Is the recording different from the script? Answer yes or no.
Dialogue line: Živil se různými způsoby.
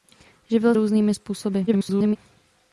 yes